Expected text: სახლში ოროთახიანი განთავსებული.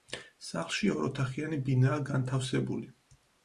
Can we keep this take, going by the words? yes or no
no